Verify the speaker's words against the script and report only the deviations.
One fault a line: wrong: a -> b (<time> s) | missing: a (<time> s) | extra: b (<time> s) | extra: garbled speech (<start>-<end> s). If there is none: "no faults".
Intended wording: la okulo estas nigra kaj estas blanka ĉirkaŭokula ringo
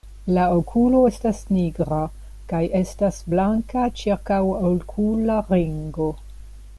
no faults